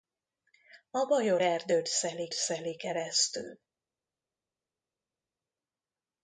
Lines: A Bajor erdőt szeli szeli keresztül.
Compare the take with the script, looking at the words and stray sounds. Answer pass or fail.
pass